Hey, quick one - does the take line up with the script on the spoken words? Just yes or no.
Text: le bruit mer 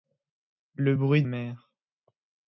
yes